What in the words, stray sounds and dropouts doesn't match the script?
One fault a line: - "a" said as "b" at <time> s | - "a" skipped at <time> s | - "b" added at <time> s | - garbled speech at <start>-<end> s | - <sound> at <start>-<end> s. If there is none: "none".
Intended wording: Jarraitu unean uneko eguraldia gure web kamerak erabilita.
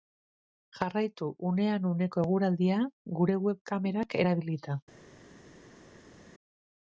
none